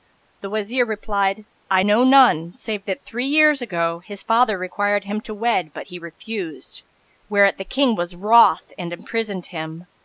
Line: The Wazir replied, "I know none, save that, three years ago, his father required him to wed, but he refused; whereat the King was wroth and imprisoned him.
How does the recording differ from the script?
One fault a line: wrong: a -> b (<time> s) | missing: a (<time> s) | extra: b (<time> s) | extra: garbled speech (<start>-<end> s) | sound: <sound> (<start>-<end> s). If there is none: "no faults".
no faults